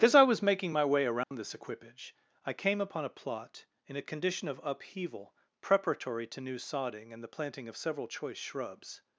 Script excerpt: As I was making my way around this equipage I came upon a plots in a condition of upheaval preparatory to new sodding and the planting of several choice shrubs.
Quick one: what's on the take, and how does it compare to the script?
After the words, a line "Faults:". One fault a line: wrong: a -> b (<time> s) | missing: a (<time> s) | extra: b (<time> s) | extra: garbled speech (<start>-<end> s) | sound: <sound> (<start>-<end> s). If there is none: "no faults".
As I was making my way around this equipage I came upon a plot in a condition of upheaval preparatory to new sodding and the planting of several choice shrubs.
Faults:
sound: dropout (1.2-1.3 s)
wrong: plots -> plot (3.2 s)